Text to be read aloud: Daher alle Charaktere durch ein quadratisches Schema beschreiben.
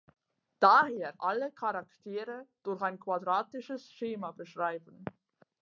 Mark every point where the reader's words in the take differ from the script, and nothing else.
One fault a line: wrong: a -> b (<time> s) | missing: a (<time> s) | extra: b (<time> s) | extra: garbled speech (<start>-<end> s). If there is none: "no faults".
no faults